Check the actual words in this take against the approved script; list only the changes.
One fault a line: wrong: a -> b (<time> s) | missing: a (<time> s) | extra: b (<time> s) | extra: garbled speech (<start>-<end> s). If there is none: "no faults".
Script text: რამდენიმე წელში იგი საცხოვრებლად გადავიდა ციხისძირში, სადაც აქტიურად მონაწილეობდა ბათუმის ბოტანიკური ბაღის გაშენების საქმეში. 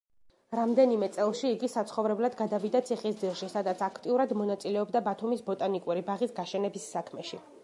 no faults